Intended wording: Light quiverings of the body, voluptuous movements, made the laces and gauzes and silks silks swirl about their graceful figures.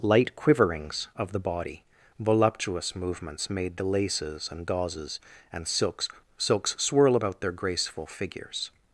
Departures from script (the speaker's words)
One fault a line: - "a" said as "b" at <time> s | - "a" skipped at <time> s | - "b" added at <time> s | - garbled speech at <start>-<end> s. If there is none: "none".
none